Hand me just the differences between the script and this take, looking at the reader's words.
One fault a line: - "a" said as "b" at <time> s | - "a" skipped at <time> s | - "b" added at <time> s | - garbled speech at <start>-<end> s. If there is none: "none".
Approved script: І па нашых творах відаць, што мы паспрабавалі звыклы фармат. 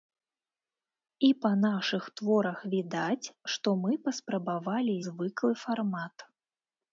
none